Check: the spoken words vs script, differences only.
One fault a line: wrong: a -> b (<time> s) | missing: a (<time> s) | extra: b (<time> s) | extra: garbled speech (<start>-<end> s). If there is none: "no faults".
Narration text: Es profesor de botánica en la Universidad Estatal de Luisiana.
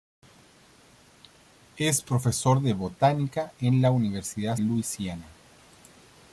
missing: Estatal de (4.5 s)